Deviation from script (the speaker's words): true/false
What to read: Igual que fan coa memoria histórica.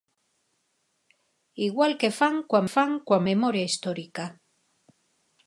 true